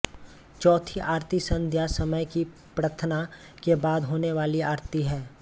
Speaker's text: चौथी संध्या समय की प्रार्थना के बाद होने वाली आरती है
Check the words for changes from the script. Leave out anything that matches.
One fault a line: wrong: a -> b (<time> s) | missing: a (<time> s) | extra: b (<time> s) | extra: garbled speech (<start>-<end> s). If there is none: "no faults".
extra: आरती (1.0 s)